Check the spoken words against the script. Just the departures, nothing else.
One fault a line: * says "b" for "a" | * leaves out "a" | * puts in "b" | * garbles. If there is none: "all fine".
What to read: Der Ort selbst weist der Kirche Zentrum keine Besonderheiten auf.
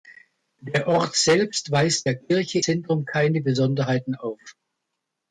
all fine